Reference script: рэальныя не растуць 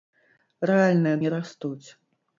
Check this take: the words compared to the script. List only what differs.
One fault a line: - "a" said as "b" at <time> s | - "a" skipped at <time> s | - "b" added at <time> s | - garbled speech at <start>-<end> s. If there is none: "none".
none